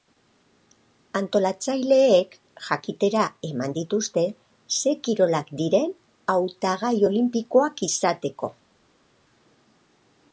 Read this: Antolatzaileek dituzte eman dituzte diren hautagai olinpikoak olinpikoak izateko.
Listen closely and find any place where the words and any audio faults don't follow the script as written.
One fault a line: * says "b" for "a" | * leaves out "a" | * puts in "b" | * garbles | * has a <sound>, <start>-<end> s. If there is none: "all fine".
* says "jakitera" for "dituzte"
* puts in "ze kirolak"
* leaves out "olinpikoak"